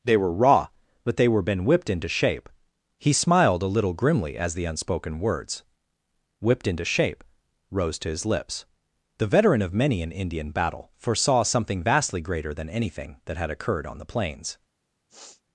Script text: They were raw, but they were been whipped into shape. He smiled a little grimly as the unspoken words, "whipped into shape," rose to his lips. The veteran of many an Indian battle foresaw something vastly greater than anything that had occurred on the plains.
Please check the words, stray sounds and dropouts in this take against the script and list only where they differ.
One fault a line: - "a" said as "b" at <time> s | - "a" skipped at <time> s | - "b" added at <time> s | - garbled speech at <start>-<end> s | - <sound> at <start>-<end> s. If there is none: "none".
- sniff at 15.1-15.4 s